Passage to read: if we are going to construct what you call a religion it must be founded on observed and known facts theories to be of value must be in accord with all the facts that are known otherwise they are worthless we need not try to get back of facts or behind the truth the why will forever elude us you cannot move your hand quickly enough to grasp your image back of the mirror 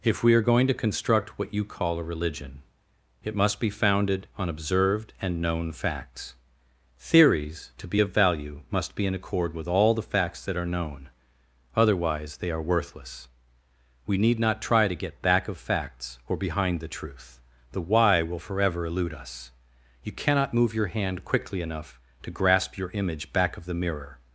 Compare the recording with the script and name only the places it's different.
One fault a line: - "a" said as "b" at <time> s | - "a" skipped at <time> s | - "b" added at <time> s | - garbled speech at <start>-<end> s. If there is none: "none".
none